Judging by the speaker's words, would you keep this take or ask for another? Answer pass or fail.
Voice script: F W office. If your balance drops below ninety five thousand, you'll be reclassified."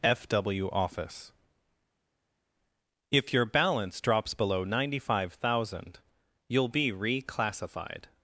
pass